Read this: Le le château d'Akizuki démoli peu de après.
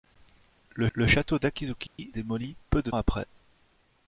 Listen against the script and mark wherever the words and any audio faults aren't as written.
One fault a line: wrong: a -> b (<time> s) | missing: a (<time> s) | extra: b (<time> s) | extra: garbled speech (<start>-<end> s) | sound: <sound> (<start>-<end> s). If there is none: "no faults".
sound: dropout (1.9-2.0 s)